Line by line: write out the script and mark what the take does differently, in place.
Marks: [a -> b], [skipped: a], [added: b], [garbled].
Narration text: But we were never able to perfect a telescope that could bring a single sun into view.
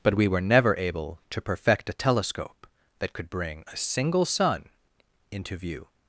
But we were never able to perfect a telescope that could bring a single sun into view.